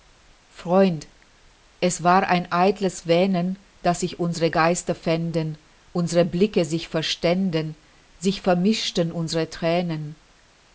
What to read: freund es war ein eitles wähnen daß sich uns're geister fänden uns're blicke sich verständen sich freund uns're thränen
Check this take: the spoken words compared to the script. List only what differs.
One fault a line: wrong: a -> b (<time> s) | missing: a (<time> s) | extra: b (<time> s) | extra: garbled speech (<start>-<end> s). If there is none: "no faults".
wrong: freund -> vermischten (8.4 s)